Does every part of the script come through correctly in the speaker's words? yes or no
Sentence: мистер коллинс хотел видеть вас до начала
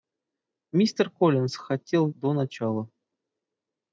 no